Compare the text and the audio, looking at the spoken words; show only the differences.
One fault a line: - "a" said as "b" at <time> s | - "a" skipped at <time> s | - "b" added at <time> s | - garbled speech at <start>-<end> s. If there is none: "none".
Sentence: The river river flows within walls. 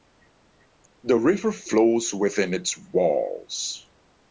- "river" skipped at 1.5 s
- "its" added at 2.5 s